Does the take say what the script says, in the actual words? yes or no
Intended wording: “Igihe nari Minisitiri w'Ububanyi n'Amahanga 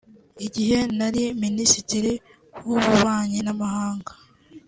yes